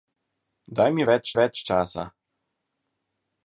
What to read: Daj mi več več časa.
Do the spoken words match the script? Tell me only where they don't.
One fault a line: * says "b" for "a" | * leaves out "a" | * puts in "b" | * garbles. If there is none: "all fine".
all fine